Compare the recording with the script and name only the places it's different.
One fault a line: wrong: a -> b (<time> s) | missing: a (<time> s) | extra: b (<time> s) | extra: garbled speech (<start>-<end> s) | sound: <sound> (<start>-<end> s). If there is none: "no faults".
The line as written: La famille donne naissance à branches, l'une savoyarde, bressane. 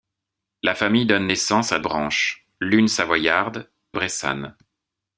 no faults